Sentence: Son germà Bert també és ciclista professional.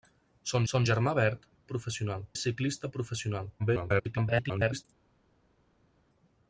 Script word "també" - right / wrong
wrong